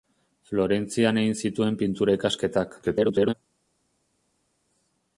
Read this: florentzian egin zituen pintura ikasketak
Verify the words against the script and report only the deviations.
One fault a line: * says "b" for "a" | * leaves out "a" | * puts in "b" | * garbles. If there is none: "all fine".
* garbles